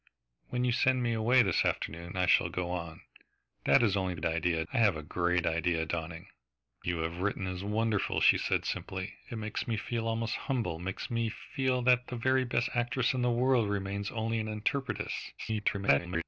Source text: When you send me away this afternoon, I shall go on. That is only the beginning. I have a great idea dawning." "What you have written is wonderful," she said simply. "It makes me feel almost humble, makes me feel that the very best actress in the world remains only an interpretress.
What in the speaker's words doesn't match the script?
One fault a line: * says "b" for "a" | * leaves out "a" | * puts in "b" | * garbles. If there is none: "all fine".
* says "idea" for "beginning"
* leaves out "What"
* garbles